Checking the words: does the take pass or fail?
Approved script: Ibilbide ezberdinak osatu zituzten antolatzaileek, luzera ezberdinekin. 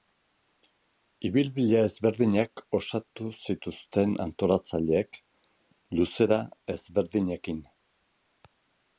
pass